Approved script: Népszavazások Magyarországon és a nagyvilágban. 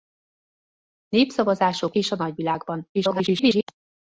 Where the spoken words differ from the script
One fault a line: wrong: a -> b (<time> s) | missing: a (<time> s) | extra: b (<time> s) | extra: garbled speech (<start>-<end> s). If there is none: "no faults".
missing: Magyarországon (1.9 s)
extra: garbled speech (2.9-3.6 s)